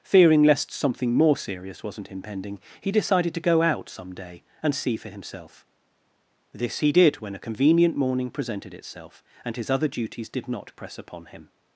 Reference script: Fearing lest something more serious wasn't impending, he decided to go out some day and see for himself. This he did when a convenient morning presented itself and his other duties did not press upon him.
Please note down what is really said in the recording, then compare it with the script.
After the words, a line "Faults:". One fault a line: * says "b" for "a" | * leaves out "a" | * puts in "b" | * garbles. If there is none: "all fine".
Fearing lest something more serious wasn't impending, he decided to go out some day and see for himself. This he did when a convenient morning presented itself and his other duties did not press upon him.
Faults:
all fine